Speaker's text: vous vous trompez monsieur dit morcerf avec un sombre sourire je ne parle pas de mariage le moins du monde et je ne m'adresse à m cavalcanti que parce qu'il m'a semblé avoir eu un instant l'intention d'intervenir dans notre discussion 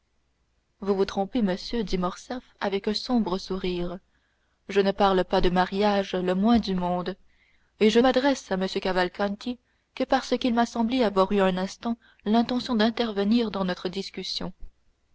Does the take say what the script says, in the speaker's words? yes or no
no